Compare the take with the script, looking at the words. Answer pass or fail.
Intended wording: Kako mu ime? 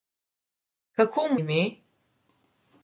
pass